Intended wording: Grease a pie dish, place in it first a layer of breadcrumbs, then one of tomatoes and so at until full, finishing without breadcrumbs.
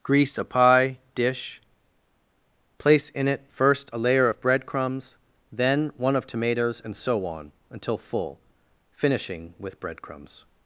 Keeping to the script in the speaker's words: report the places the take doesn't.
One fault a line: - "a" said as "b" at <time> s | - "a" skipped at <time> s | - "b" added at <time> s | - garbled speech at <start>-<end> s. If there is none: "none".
- "at" said as "on" at 7.2 s
- "without" said as "with" at 9.6 s